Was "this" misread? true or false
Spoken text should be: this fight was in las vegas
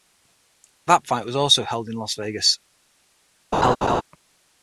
true